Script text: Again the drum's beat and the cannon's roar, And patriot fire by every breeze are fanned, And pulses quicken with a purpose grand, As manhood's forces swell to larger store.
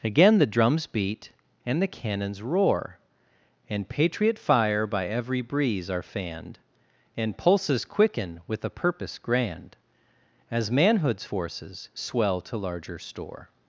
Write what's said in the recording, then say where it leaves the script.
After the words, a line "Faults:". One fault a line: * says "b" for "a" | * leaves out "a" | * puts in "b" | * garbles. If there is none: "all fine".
Again the drum's beat and the cannon's roar, And patriot fire by every breeze are fanned, And pulses quicken with a purpose grand, As manhood's forces swell to larger store.
Faults:
all fine